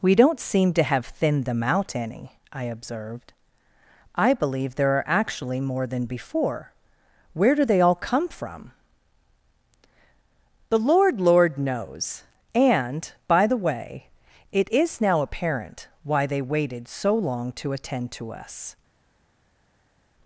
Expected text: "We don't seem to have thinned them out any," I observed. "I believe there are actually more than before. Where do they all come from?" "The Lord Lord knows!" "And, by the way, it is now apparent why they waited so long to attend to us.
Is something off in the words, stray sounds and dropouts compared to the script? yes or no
no